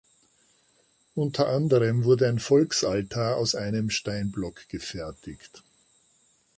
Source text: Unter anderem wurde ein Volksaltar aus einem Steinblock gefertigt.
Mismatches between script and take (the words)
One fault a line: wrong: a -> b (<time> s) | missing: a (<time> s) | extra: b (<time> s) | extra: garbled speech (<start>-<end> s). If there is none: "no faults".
no faults